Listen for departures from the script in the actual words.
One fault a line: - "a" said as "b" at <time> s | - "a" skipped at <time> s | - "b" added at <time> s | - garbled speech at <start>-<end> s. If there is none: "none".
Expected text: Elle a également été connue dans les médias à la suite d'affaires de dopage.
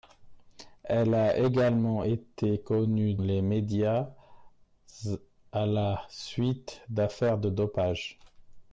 - "dans" skipped at 3.2 s